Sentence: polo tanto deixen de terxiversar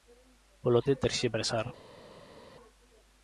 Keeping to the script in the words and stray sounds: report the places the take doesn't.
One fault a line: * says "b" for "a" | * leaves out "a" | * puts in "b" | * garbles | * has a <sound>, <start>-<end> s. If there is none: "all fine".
* leaves out "tanto deixen"